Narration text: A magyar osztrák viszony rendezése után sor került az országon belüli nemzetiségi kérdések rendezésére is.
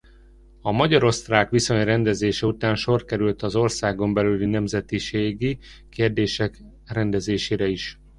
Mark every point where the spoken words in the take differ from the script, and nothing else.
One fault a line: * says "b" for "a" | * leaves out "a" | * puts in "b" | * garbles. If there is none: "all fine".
all fine